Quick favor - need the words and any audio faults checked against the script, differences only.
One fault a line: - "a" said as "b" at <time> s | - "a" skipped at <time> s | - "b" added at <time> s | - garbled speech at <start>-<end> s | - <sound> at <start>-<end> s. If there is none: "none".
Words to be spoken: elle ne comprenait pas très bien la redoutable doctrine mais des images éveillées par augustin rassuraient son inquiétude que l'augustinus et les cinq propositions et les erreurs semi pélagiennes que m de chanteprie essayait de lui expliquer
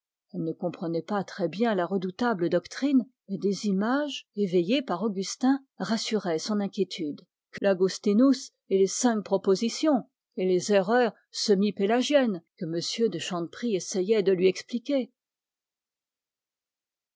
none